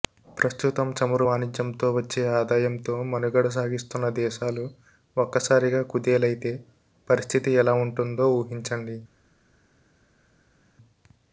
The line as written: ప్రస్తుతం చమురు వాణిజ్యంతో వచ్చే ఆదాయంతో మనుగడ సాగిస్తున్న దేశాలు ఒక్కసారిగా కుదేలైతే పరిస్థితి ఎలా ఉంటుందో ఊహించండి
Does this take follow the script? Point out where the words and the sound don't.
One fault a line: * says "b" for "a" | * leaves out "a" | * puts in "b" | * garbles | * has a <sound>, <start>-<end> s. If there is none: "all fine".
all fine